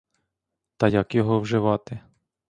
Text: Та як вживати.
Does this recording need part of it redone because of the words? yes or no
yes